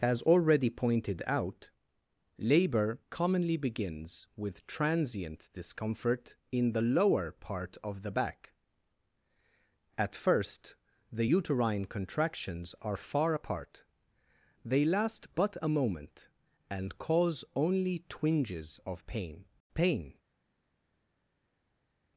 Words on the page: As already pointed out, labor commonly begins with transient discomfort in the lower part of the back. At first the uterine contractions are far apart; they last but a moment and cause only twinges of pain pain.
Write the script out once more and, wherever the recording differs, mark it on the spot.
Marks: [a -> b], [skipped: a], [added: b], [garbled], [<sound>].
As already pointed out, labor commonly begins with transient discomfort in the lower part of the back. At first the uterine contractions are far apart; they last but a moment and cause only twinges of pain pain.